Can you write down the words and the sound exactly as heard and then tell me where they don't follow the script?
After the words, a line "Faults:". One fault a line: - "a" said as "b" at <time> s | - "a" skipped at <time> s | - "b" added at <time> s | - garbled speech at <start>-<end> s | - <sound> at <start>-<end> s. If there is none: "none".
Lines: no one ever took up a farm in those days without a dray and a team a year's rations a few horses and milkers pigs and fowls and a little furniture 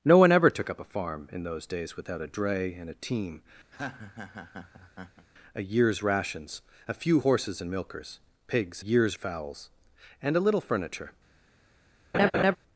no one ever took up a farm in those days without a dray and a team a year's rations a few horses and milkers pigs year's fowls and a little furniture
Faults:
- laugh at 3.7-5.3 s
- "and" said as "year's" at 8.8 s
- laugh at 12.1-12.6 s